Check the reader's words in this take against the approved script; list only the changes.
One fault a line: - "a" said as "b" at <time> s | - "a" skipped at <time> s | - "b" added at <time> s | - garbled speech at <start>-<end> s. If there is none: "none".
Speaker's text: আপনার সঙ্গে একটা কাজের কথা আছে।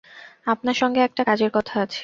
none